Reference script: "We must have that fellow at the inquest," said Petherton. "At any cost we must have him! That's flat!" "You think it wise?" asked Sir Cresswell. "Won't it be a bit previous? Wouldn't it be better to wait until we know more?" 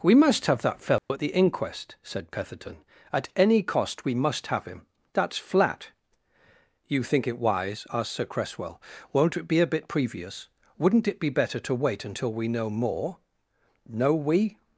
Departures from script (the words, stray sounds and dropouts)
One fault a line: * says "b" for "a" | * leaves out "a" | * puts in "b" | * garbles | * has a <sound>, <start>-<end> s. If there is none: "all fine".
* has a dropout, 1.0-1.1 s
* puts in "No we"